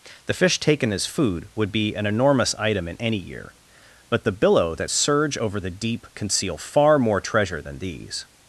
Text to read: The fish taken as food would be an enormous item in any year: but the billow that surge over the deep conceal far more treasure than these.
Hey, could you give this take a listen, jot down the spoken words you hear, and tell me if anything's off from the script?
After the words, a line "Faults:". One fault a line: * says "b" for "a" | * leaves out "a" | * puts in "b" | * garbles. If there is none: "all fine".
The fish taken as food would be an enormous item in any year: but the billow that surge over the deep conceal far more treasure than these.
Faults:
all fine